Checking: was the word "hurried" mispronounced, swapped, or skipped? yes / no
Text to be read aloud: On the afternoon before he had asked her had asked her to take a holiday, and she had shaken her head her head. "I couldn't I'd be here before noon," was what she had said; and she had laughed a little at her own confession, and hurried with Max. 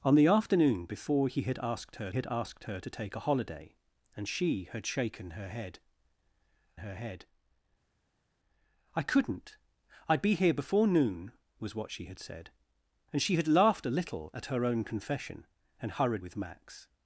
no